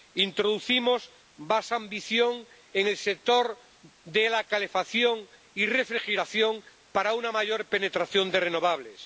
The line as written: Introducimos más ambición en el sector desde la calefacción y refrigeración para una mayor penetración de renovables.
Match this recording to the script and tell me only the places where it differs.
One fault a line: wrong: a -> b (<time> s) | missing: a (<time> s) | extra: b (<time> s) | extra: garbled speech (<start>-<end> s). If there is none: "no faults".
wrong: desde -> de (4.0 s)